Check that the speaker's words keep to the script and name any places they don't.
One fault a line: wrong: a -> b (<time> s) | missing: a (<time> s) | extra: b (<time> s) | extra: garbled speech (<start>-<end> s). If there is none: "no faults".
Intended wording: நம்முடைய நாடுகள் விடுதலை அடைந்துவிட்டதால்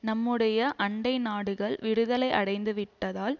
extra: அண்டை (0.8 s)